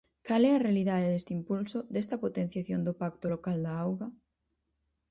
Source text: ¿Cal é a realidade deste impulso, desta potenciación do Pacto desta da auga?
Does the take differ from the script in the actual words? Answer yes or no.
yes